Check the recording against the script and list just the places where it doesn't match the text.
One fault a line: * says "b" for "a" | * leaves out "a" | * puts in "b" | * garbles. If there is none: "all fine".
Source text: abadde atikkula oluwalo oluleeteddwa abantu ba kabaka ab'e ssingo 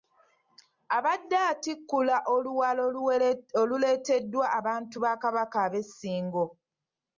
all fine